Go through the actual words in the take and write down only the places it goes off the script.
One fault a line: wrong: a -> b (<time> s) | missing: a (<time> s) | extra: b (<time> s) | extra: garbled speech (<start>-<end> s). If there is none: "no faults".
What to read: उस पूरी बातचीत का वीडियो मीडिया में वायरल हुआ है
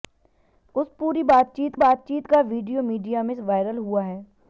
extra: बातचीत (1.7 s)